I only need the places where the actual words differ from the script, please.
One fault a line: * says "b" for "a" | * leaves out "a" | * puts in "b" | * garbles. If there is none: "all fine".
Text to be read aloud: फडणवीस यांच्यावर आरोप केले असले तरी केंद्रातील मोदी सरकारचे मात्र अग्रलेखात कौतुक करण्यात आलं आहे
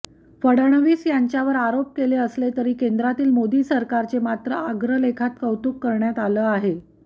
all fine